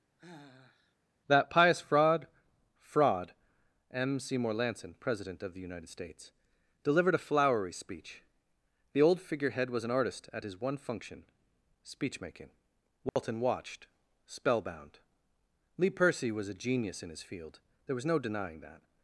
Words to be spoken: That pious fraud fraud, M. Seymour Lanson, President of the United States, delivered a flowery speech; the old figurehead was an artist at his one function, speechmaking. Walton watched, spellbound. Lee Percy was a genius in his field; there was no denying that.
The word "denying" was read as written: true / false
true